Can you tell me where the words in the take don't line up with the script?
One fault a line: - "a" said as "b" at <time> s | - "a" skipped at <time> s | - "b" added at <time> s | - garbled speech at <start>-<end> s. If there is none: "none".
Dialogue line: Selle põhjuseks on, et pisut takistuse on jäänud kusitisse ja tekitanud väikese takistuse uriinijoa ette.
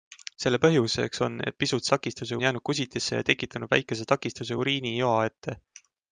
none